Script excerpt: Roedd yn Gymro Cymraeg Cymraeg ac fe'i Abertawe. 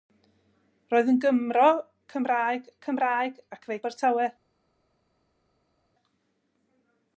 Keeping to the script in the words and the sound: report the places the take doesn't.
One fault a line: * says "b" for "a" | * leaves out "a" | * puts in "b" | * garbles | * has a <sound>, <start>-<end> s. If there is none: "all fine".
all fine